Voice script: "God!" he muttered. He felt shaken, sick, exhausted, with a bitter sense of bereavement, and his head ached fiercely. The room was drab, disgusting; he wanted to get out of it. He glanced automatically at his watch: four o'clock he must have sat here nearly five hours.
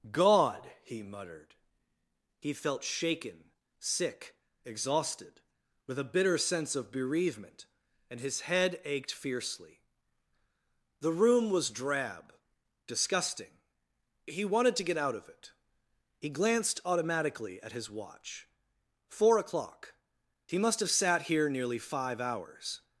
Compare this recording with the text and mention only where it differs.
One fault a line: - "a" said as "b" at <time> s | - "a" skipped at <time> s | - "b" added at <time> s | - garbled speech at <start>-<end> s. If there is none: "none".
none